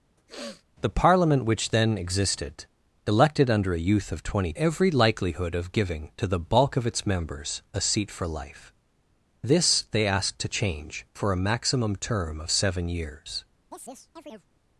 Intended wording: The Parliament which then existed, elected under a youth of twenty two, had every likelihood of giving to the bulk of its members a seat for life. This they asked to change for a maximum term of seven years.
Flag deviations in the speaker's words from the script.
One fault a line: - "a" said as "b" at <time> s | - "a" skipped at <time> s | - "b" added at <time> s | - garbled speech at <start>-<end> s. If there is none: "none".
- "two had" skipped at 4.5 s